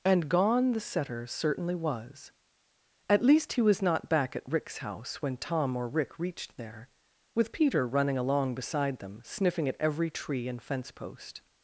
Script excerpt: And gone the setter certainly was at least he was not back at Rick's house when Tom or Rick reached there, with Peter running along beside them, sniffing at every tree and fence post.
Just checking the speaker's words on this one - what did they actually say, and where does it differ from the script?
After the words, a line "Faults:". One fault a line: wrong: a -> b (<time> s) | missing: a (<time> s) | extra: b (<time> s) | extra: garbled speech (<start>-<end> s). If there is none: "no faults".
And gone the setter certainly was at least he was not back at Rick's house when Tom or Rick reached there, with Peter running along beside them, sniffing at every tree and fence post.
Faults:
no faults